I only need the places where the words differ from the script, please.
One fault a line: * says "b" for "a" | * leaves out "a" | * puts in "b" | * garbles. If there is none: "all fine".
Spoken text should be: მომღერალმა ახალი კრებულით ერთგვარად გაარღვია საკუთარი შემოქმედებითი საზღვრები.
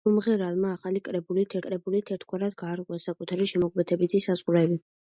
* puts in "კრებულით"